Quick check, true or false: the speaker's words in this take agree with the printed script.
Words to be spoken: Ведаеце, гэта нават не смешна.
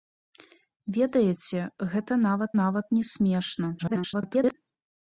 false